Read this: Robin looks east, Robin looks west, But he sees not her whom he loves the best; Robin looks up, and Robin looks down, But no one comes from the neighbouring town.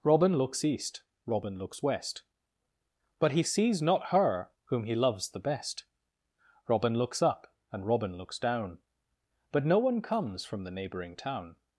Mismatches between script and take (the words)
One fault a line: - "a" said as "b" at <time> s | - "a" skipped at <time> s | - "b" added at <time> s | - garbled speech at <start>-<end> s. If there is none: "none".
none